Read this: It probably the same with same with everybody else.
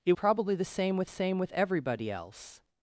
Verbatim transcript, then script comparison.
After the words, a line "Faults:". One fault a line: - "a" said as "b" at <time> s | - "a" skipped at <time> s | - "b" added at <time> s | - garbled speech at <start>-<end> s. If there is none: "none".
It probably the same with same with everybody else.
Faults:
none